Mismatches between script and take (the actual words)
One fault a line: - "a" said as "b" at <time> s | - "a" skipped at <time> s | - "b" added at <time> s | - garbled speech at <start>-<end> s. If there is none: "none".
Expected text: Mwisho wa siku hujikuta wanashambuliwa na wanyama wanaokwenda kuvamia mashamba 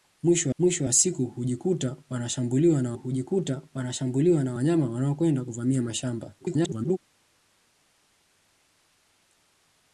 - "mwisho" added at 0.6 s
- "hujikuta wanashambuliwa na" added at 2.9 s
- garbled speech at 6.4-7.0 s